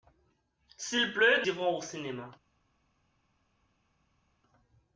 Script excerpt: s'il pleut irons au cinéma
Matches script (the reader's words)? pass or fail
pass